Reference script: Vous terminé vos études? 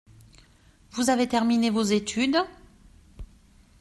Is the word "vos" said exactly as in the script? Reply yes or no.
yes